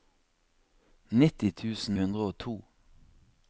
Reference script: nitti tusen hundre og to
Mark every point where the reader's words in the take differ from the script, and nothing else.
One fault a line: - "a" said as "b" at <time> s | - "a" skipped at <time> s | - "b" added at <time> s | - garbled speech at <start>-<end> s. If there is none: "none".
none